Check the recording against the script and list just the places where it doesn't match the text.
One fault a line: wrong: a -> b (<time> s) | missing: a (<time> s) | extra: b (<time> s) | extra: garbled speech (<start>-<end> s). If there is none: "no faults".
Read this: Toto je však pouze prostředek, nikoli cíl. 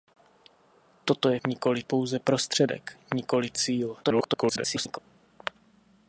wrong: však -> nikoli (1.5 s)
extra: garbled speech (4.0-5.0 s)